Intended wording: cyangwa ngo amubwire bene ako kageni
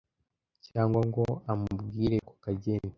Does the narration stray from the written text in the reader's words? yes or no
yes